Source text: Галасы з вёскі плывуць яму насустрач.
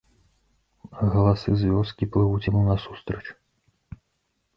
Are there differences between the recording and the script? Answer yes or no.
no